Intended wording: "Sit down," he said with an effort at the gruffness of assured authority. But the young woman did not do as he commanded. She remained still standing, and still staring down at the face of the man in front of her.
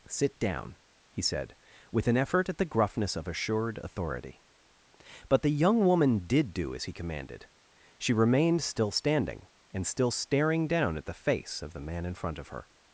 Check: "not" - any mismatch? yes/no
yes